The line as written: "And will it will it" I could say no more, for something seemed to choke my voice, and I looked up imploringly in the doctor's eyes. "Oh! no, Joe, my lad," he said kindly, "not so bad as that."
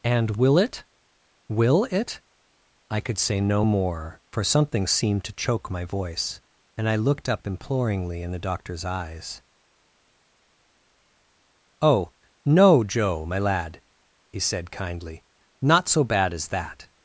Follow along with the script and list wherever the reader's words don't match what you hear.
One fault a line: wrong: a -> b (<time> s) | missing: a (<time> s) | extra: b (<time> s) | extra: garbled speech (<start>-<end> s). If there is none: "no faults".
no faults